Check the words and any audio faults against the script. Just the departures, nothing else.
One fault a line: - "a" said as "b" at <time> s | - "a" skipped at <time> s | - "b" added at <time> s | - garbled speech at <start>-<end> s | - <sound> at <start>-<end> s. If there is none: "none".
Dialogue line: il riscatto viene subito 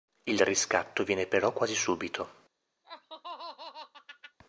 - "però quasi" added at 1.3 s
- laugh at 2.8-4.4 s